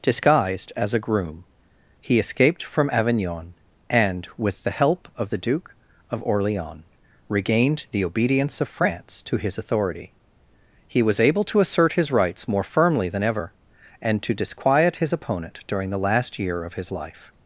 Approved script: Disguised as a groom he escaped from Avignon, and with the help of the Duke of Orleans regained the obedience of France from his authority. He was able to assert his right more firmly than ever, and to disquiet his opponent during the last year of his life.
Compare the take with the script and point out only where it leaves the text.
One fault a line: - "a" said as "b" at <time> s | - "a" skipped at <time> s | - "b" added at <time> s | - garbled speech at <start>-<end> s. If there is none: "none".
- "from" said as "to" at 9.2 s
- "right" said as "rights" at 12.1 s